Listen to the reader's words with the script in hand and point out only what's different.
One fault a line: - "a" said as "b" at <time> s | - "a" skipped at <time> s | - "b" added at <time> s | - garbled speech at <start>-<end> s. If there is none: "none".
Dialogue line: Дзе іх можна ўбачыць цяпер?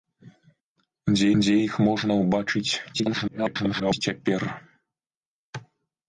- "дзе" added at 1.4 s
- garbled speech at 2.9-4.0 s